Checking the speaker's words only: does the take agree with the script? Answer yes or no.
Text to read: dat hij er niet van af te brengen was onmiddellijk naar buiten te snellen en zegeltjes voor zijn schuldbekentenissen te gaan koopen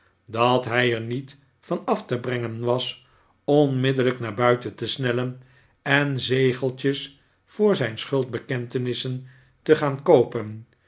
yes